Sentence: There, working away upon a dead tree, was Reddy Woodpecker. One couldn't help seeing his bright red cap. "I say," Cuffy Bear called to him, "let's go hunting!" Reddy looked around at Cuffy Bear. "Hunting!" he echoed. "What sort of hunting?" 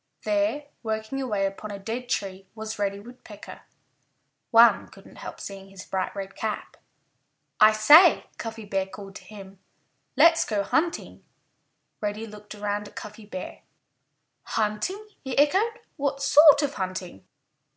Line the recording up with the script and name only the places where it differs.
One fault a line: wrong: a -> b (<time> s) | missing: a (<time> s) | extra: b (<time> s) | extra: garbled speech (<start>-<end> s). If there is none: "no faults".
no faults